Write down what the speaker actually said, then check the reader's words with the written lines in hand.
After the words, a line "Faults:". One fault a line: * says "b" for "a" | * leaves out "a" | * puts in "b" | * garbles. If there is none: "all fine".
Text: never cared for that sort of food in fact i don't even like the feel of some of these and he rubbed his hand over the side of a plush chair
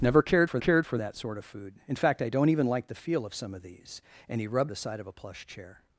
never cared for cared for that sort of food in fact i don't even like the feel of some of these and he rubbed the side of a plush chair
Faults:
* puts in "cared for"
* leaves out "his hand over"